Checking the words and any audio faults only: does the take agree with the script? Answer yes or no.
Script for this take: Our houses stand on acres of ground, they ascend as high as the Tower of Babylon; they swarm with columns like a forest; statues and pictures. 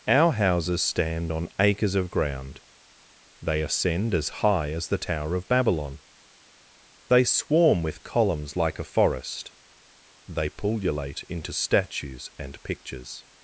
no